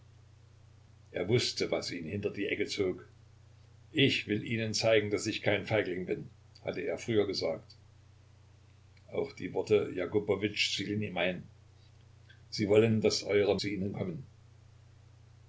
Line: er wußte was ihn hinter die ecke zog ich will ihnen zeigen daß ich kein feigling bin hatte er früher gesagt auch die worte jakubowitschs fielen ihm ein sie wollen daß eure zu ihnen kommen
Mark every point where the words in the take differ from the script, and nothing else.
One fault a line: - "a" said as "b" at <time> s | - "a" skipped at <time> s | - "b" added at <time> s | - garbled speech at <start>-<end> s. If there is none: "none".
none